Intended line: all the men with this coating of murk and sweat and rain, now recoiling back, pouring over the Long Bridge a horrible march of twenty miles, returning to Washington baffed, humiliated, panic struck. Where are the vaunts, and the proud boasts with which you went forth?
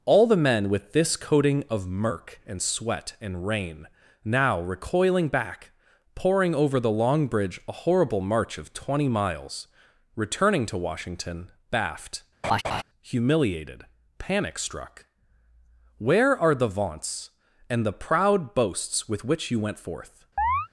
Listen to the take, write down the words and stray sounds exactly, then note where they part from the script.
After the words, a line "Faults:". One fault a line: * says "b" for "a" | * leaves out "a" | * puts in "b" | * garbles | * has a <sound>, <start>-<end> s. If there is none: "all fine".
all the men with this coating of murk and sweat and rain, now recoiling back, pouring over the Long Bridge a horrible march of twenty miles, returning to Washington baffed, humiliated, panic struck. Where are the vaunts, and the proud boasts with which you went forth?
Faults:
* has a laugh, 12.4-12.8 s
* has a chirp, 20.4-20.7 s